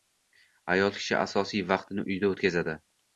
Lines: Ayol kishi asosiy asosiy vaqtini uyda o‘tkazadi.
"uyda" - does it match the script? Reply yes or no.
yes